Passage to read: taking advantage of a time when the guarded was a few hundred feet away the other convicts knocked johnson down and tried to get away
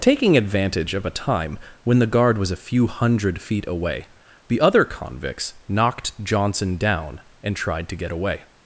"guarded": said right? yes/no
no